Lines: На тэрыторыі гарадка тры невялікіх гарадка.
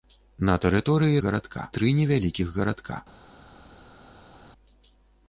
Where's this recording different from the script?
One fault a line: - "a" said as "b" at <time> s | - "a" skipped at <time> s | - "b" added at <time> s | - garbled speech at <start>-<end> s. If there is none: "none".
none